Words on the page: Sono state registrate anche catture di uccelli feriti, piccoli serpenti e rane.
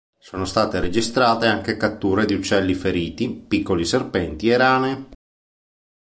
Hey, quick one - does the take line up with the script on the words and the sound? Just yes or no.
yes